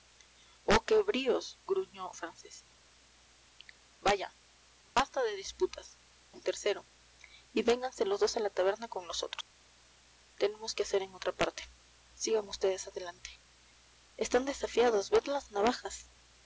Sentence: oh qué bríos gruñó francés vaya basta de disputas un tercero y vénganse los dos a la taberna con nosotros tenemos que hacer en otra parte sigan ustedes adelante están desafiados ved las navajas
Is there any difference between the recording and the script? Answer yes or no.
no